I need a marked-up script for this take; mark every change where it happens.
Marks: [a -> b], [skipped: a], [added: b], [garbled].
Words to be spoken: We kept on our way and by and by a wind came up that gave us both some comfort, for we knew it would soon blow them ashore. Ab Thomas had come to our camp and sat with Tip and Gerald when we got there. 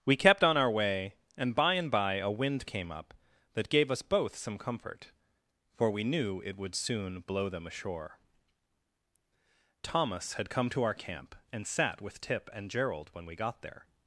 We kept on our way and by and by a wind came up that gave us both some comfort, for we knew it would soon blow them ashore. [skipped: Ab] Thomas had come to our camp and sat with Tip and Gerald when we got there.